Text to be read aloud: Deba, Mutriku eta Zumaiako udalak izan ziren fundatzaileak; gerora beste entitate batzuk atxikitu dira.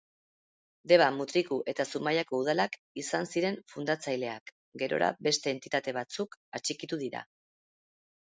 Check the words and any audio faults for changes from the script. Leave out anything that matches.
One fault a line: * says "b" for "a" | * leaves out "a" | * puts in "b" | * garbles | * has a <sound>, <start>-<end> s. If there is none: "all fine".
all fine